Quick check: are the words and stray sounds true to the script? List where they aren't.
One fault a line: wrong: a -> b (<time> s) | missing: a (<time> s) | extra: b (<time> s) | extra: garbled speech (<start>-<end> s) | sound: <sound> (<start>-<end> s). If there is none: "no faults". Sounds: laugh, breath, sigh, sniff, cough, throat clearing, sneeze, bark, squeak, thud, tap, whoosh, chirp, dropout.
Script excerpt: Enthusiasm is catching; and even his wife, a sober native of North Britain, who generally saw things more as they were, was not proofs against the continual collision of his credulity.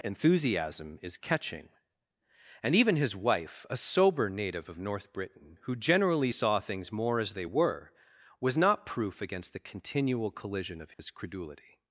wrong: proofs -> proof (8.8 s)
sound: dropout (10.9-11.0 s)